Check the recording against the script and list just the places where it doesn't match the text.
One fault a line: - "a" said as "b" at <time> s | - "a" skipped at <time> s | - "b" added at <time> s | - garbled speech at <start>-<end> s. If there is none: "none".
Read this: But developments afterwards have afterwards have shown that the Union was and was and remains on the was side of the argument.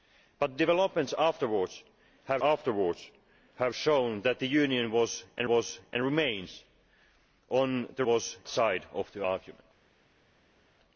none